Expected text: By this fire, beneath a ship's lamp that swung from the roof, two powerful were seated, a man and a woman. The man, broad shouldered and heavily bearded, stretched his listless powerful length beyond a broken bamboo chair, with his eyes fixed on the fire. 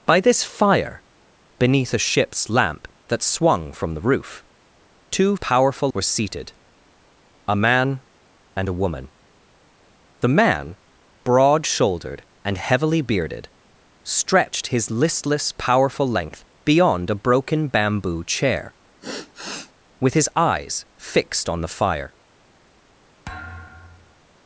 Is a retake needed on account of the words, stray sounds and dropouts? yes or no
yes